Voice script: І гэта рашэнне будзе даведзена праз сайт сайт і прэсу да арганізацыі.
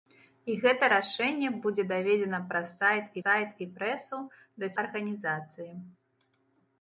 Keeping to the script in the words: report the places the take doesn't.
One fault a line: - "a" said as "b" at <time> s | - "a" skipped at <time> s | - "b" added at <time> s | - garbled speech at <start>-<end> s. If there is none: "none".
none